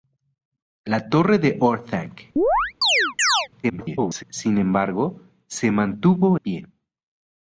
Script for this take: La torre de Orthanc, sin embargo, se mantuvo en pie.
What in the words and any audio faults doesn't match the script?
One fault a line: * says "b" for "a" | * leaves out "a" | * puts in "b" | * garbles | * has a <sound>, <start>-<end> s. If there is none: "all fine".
* has a chirp, 2.4-3.5 s
* garbles
* leaves out "en"